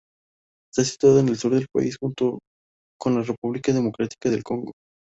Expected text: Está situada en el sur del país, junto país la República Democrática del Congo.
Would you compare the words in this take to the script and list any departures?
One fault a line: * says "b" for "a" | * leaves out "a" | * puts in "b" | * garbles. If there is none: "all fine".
* says "con" for "país"